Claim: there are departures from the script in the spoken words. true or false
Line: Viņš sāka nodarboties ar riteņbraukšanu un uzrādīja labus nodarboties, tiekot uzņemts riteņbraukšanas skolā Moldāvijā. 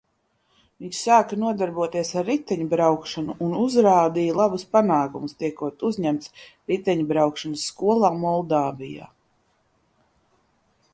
true